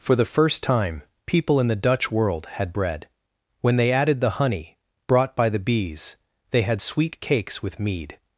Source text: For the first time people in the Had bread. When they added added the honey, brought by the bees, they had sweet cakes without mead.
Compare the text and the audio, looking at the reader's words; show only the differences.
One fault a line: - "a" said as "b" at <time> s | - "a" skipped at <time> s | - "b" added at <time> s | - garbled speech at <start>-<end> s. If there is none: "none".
- "Dutch world" added at 1.8 s
- "added" skipped at 4.2 s
- "without" said as "with" at 7.6 s